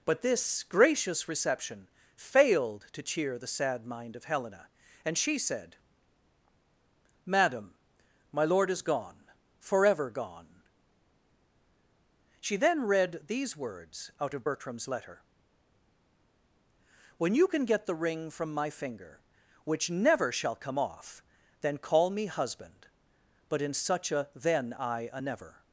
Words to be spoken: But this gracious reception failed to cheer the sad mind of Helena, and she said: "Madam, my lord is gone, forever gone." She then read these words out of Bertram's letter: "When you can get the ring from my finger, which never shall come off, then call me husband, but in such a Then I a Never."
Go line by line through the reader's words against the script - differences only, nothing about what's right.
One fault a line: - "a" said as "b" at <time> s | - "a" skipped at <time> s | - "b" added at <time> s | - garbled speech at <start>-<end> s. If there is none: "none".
none